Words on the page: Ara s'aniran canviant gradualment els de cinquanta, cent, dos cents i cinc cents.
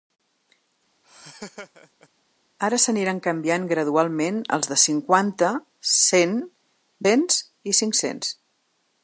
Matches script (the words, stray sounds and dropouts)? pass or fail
fail